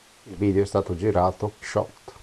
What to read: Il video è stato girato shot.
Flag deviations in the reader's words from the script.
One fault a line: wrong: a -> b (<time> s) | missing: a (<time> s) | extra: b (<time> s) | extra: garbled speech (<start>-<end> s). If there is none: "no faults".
no faults